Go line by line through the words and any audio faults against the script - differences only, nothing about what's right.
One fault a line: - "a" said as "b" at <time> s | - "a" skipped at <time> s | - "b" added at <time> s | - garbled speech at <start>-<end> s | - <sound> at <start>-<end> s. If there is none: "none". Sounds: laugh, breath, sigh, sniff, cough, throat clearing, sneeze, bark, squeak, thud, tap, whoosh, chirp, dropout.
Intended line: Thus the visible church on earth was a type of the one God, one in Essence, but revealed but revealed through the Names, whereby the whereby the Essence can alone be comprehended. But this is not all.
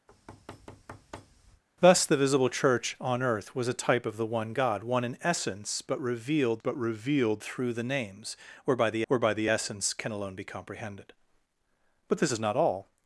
- thud at 0.1-1.6 s